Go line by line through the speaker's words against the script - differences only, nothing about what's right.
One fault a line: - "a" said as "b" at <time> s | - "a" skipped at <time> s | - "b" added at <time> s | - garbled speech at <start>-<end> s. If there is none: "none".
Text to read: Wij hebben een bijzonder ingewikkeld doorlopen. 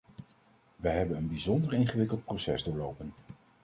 - "proces" added at 2.2 s